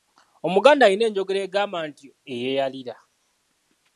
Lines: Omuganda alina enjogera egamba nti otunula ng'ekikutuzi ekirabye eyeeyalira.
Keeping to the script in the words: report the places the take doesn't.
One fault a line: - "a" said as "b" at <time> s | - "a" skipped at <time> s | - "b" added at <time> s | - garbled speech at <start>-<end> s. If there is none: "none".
- "otunula ng'ekikutuzi ekirabye" skipped at 2.0 s